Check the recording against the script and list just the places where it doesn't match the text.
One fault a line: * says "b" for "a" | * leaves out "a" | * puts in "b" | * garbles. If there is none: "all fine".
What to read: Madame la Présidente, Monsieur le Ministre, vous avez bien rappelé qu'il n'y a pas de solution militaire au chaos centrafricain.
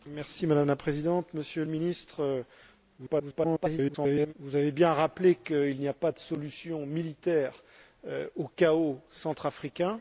* garbles